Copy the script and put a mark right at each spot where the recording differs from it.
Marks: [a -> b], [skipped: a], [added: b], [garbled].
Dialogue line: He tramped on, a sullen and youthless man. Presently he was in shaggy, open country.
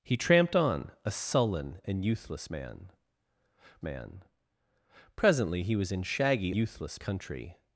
He tramped on, a sullen and youthless man. [added: man] Presently he was in shaggy, [open -> youthless] country.